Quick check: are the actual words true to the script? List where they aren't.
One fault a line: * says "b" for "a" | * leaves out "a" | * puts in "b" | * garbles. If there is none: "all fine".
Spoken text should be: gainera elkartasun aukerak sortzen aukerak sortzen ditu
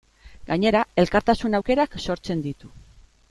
* leaves out "aukerak sortzen"